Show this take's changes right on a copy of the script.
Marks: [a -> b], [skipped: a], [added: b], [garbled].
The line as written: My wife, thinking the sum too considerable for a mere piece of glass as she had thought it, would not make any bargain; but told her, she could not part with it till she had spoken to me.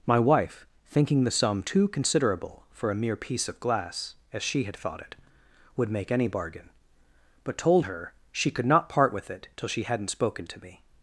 My wife, thinking the sum too considerable for a mere piece of glass as she had thought it, would [skipped: not] make any bargain; but told her, she could not part with it till she [had -> hadn't] spoken to me.